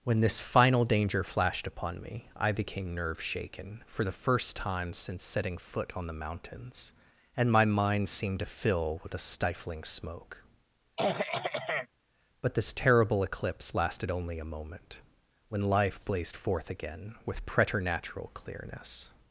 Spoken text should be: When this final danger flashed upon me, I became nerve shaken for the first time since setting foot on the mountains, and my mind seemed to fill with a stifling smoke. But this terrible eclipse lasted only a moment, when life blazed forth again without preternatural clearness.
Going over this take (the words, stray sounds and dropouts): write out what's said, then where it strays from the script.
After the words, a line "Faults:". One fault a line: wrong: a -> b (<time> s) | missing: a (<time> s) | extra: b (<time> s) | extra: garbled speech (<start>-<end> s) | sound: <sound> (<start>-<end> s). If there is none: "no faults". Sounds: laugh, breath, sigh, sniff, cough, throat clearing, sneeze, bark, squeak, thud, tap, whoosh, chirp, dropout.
When this final danger flashed upon me, I became nerve shaken for the first time since setting foot on the mountains, and my mind seemed to fill with a stifling smoke. But this terrible eclipse lasted only a moment, when life blazed forth again with preternatural clearness.
Faults:
sound: throat clearing (11.0-11.9 s)
wrong: without -> with (17.3 s)